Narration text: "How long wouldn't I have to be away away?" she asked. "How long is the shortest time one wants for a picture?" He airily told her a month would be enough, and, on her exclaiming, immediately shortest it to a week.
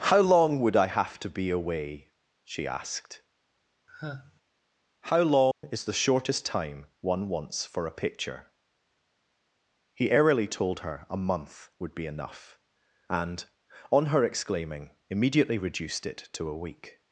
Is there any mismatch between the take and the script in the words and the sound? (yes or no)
yes